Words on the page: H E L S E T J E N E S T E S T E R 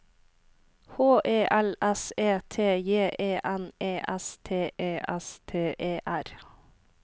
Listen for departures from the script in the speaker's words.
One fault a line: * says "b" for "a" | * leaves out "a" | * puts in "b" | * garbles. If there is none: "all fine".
all fine